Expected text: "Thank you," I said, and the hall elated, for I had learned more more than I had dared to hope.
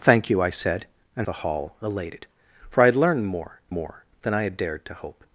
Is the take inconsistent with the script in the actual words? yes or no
no